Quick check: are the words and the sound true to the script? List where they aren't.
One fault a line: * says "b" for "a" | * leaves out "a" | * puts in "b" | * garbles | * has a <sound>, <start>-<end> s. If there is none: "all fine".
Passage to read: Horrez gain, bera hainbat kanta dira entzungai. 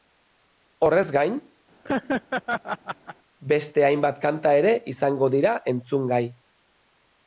* has a laugh, 1.8-3.2 s
* says "beste" for "bera"
* puts in "ere izango"